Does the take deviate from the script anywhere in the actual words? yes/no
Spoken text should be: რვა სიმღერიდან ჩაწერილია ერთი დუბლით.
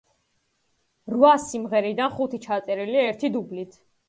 yes